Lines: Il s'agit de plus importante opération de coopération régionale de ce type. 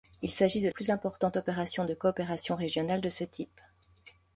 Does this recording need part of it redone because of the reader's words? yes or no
no